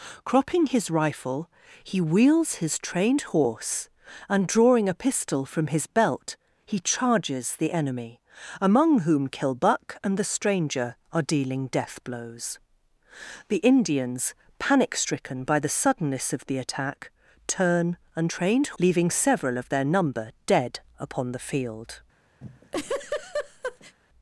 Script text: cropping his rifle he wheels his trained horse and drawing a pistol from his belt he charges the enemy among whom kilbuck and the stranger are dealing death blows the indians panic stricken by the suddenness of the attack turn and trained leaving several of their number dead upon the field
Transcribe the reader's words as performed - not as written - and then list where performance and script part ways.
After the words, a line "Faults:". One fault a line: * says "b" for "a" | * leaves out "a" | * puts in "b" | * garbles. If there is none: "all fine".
cropping his rifle he wheels his trained horse and drawing a pistol from his belt he charges the enemy among whom kilbuck and the stranger are dealing death blows the indians panic stricken by the suddenness of the attack turn and trained leaving several of their number dead upon the field
Faults:
all fine